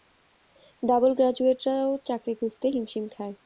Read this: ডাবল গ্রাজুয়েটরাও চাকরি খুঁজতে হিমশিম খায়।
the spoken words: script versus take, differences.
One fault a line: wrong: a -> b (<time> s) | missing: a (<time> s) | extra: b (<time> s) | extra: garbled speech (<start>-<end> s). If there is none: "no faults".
no faults